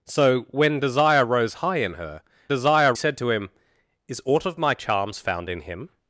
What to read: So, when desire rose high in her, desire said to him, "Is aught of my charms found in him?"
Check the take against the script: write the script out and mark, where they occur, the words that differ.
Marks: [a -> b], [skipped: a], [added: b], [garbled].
So, when desire rose high in her, desire said to him, "Is aught of my charms found in him?"